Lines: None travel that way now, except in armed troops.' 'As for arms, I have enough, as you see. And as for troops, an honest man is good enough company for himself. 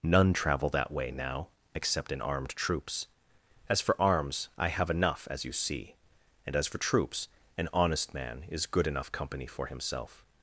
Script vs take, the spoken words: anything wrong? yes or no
no